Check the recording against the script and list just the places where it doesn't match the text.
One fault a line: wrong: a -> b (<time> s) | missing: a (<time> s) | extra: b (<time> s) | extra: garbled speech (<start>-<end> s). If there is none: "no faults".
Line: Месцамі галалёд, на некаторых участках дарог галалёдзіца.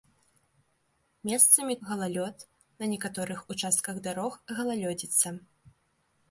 no faults